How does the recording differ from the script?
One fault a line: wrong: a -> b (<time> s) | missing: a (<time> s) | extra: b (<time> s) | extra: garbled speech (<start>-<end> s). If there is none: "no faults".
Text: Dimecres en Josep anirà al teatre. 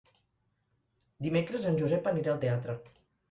no faults